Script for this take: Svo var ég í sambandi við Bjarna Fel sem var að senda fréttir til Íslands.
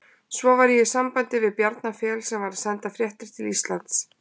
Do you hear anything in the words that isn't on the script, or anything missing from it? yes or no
no